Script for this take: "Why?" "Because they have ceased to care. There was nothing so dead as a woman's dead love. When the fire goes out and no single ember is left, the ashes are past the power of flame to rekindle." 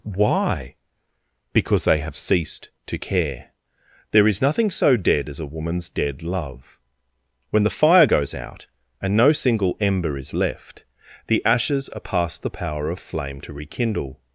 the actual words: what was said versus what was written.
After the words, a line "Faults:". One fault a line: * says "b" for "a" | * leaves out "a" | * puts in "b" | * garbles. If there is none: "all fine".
"Why?" "Because they have ceased to care. There is nothing so dead as a woman's dead love. When the fire goes out and no single ember is left, the ashes are past the power of flame to rekindle."
Faults:
* says "is" for "was"